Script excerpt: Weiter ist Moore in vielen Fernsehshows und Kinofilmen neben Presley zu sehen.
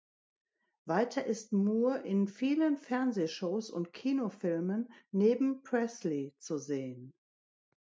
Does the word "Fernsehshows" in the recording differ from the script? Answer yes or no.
no